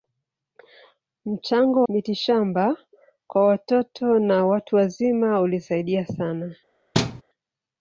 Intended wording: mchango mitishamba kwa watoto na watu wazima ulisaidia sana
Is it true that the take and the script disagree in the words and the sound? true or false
true